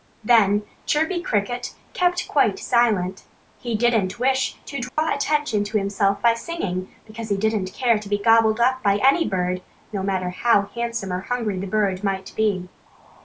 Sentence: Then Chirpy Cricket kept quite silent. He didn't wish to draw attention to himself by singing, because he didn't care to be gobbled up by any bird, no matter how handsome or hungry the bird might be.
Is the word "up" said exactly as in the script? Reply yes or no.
yes